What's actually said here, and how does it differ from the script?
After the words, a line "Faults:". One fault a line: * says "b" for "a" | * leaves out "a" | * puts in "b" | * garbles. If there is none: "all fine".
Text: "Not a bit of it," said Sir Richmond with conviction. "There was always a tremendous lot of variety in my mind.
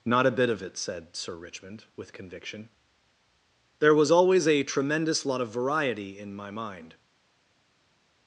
"Not a bit of it," said Sir Richmond with conviction. "There was always a tremendous lot of variety in my mind.
Faults:
all fine